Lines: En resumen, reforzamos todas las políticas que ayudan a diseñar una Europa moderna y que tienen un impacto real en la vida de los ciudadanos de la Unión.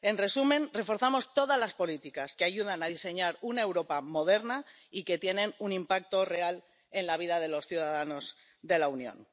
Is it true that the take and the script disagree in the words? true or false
false